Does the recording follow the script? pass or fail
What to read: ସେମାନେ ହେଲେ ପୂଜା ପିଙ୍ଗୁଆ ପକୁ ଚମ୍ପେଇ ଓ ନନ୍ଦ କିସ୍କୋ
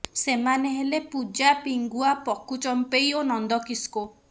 pass